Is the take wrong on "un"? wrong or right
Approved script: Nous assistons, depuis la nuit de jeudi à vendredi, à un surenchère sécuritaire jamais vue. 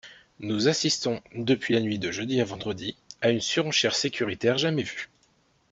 wrong